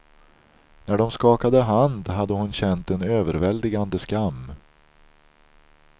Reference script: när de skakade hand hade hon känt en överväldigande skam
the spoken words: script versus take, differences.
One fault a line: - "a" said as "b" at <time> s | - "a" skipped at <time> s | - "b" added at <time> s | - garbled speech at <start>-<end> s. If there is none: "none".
none